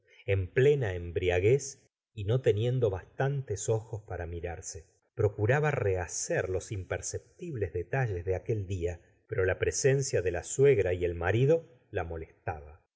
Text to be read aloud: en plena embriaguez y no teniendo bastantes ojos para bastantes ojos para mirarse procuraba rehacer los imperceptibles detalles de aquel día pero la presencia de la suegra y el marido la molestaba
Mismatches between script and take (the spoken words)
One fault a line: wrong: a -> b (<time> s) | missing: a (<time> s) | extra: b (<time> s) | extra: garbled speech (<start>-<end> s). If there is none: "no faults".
missing: bastantes ojos para (4.2 s)